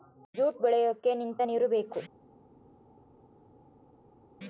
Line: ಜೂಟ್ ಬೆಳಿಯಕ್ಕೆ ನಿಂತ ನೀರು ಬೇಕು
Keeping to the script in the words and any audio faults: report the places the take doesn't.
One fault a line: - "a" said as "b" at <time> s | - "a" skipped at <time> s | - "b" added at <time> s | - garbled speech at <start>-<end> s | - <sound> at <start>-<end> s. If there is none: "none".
none